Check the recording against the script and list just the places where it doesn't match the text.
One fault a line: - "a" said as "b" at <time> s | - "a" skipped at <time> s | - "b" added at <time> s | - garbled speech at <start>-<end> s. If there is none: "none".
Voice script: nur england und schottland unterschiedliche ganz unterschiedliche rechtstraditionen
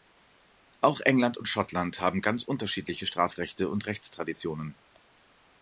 - "nur" said as "auch" at 0.8 s
- "unterschiedliche" said as "haben" at 2.0 s
- "strafrechte und" added at 3.0 s